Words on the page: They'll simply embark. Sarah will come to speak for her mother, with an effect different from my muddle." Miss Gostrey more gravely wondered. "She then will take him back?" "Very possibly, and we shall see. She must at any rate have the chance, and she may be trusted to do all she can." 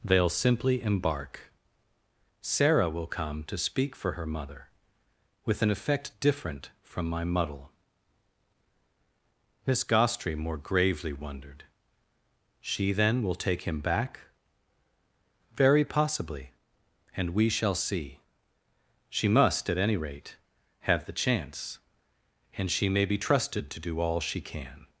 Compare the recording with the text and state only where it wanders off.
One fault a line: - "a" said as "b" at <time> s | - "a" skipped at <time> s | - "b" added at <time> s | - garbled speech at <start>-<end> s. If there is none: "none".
none